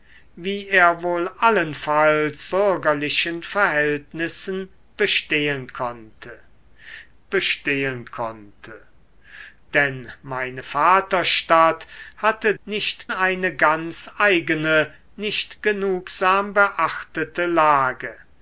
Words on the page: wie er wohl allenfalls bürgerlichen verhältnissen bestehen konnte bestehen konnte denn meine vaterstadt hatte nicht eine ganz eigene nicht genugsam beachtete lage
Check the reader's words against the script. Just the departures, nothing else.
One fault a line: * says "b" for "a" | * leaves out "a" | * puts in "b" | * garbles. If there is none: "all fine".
all fine